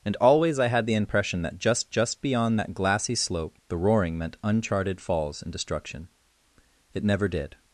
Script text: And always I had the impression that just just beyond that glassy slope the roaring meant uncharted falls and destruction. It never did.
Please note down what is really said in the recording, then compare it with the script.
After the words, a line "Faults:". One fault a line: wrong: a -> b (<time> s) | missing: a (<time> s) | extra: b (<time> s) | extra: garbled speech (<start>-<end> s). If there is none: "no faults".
And always I had the impression that just just beyond that glassy slope the roaring meant uncharted falls and destruction. It never did.
Faults:
no faults